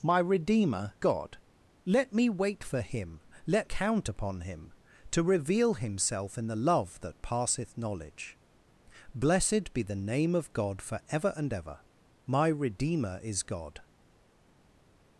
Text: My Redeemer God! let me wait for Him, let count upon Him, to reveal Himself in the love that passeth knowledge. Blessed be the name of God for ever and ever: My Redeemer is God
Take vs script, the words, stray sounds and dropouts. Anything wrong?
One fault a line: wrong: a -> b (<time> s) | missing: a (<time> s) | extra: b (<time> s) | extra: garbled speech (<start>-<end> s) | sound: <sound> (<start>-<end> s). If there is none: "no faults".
no faults